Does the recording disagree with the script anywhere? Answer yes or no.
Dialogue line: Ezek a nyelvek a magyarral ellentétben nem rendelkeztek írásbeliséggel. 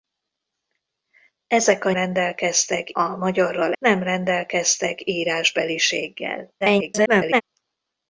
yes